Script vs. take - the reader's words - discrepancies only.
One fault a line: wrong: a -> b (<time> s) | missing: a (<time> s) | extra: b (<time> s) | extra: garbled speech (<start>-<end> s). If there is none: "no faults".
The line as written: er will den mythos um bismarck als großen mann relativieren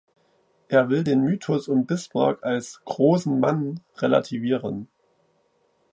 no faults